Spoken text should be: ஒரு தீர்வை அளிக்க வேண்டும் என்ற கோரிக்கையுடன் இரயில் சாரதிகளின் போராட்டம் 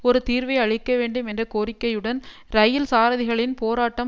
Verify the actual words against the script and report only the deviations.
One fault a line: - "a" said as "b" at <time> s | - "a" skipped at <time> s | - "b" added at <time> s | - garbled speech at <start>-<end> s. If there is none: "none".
none